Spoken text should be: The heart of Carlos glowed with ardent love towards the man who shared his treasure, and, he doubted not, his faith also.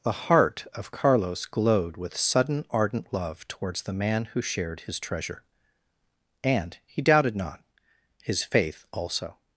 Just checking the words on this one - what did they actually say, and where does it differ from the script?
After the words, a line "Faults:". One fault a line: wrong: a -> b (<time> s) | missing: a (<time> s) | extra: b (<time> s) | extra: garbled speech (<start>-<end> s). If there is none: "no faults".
The heart of Carlos glowed with sudden ardent love towards the man who shared his treasure, and, he doubted not, his faith also.
Faults:
extra: sudden (2.2 s)